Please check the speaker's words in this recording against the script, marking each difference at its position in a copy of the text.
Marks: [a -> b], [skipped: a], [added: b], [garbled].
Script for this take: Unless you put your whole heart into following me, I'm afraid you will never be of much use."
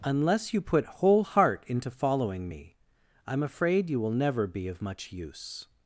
Unless you put [skipped: your] whole heart into following me, I'm afraid you will never be of much use."